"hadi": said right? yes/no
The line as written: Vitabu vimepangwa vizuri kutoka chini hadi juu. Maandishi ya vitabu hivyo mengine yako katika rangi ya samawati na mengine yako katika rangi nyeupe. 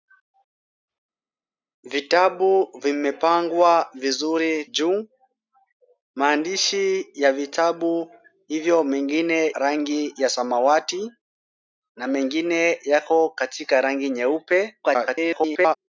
no